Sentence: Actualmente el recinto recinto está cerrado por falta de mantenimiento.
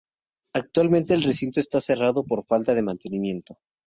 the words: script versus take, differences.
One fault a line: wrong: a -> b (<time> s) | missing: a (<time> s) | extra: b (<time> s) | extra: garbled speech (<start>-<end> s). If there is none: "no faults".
missing: recinto (1.6 s)